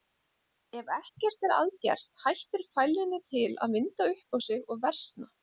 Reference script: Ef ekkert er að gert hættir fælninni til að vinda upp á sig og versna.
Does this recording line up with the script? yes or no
yes